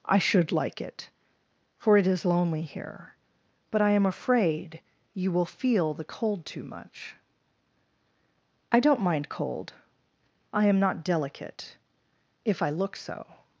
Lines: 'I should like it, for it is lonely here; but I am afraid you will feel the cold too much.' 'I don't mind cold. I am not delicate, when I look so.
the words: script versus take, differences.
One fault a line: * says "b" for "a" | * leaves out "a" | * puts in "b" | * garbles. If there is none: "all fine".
* says "if" for "when"